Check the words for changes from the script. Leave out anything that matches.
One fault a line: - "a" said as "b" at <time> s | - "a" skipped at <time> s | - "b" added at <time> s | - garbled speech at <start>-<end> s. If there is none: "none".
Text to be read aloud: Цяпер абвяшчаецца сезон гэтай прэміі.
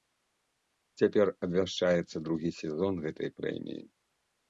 - "другі" added at 2.3 s